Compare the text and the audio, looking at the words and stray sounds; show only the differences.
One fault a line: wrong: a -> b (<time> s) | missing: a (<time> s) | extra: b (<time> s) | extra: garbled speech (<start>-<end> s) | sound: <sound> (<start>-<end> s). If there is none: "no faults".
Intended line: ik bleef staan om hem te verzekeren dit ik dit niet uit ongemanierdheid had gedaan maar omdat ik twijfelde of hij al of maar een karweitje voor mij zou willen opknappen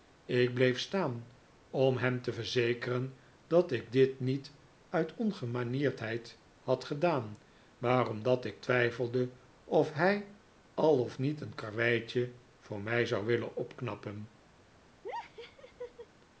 wrong: dit -> dat (3.5 s)
wrong: maar -> niet (11.2 s)
sound: laugh (15.0-16.1 s)